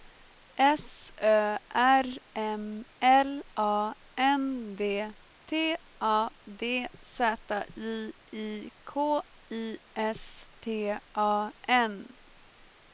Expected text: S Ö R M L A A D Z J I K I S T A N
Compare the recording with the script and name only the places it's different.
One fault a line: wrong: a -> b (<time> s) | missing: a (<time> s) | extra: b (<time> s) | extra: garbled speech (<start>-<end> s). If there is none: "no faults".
extra: N D T (4.1 s)